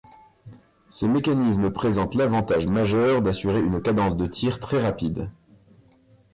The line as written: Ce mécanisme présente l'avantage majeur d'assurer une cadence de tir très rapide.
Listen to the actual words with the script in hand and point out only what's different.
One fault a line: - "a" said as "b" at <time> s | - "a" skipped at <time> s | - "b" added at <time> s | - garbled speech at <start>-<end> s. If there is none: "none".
none